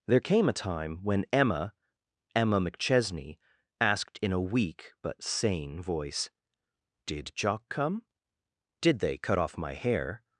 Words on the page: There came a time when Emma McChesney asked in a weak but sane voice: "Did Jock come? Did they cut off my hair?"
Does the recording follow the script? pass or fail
fail